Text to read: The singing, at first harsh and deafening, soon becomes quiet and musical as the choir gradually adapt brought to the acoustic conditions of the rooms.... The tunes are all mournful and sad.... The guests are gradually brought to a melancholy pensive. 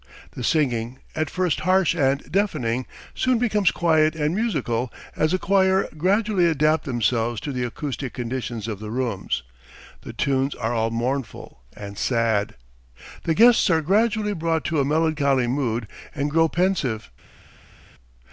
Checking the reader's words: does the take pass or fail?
fail